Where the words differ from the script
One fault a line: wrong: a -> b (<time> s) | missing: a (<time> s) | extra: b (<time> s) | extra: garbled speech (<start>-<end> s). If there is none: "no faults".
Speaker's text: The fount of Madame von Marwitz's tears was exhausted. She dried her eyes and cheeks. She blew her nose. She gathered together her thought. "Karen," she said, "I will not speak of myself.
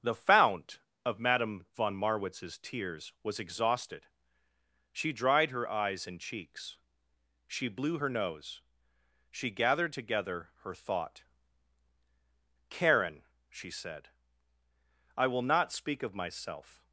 no faults